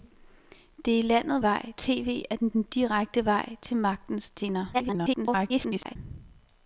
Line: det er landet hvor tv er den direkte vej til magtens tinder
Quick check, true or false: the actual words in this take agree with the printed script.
false